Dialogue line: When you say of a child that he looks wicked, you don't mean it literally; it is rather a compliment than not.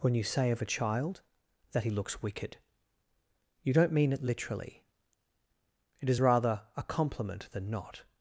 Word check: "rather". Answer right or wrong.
right